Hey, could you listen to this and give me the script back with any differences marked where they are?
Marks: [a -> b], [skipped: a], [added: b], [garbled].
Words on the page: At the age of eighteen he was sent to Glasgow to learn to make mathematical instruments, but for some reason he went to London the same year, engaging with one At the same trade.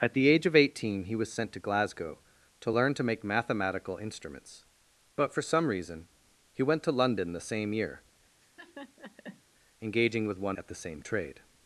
At the age of eighteen he was sent to Glasgow to learn to make mathematical instruments, but for some reason he went to London the same year, engaging with one At the same trade.